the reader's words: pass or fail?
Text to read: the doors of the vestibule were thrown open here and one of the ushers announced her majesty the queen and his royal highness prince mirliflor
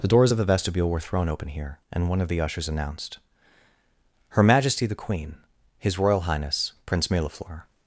fail